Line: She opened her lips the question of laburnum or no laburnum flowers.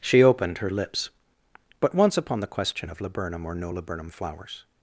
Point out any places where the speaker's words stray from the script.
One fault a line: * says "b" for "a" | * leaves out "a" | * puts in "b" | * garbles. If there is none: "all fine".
* puts in "but once upon"